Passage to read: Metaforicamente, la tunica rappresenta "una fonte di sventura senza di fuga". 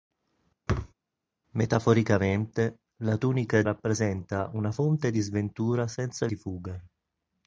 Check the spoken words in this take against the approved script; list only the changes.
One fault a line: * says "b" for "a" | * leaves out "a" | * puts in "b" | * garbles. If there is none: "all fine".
all fine